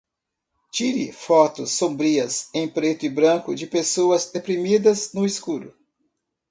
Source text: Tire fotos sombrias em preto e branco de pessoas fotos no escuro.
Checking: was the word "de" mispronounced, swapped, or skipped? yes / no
no